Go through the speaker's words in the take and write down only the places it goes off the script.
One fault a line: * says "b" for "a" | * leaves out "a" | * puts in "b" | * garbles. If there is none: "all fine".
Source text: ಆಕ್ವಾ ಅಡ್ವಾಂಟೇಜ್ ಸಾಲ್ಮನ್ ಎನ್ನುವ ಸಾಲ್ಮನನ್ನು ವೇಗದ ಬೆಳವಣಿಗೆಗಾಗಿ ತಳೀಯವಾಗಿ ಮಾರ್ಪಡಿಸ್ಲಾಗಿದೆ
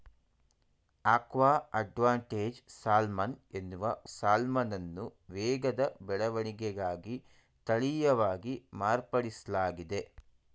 all fine